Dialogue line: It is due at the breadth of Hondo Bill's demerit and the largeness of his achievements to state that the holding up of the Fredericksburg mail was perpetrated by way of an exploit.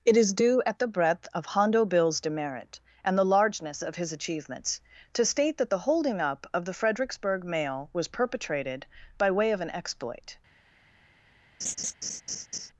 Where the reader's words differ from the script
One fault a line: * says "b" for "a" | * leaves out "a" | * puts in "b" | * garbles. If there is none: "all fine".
all fine